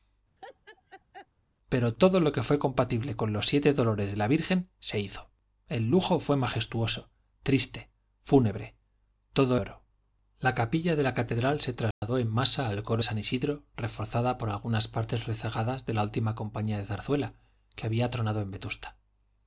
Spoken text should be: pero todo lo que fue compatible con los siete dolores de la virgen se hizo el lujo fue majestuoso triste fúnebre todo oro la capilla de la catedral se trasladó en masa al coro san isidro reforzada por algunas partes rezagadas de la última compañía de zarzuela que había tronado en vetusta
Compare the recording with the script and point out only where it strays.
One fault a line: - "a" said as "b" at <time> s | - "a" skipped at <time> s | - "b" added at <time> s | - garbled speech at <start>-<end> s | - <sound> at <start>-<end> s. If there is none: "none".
- laugh at 0.4-1.3 s
- dropout at 11.9-12.0 s